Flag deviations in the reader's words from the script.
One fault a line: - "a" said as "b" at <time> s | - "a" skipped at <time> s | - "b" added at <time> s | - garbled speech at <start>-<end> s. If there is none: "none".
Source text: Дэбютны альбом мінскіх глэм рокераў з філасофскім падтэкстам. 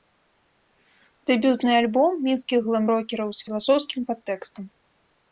none